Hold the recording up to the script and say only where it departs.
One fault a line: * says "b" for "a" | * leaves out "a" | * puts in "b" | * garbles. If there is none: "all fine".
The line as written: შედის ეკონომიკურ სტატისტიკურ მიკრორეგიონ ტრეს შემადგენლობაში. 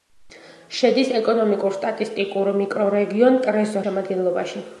all fine